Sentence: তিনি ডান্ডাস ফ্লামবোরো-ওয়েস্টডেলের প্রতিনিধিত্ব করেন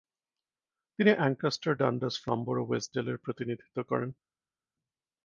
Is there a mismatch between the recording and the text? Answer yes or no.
yes